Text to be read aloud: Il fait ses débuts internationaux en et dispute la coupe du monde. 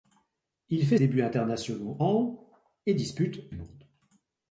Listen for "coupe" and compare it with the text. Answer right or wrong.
wrong